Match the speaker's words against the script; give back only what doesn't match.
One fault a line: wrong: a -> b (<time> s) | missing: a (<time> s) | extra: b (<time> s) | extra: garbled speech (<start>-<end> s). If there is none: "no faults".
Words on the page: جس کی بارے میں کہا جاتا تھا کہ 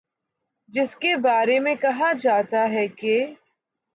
wrong: کی -> کے (0.9 s)
wrong: تھا -> ہے (2.7 s)